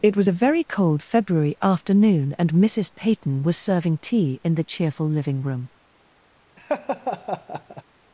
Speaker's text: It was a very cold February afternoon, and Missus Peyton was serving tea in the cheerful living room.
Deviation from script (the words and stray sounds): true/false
true